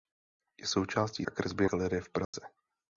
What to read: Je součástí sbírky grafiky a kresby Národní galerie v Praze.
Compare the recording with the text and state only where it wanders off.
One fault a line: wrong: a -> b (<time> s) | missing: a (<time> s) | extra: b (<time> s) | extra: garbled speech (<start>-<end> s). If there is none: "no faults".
missing: sbírky grafiky (1.2 s)
missing: Národní (1.7 s)